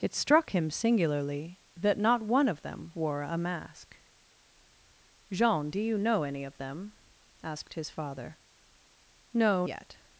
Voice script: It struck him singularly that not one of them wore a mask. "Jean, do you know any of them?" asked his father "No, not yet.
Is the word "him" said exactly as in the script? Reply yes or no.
yes